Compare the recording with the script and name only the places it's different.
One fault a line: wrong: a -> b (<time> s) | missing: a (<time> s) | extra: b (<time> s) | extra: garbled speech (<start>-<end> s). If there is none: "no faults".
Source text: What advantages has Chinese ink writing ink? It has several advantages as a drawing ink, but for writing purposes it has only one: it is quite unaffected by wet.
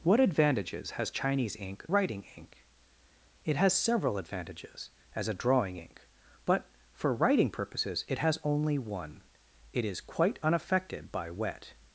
no faults